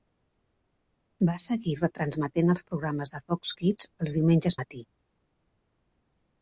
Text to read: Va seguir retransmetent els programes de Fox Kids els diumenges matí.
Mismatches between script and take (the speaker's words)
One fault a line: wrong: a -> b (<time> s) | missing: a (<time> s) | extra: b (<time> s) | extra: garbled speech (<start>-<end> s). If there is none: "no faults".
no faults